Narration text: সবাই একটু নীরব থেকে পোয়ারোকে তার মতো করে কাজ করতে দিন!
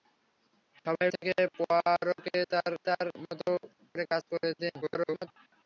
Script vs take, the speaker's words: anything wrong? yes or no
yes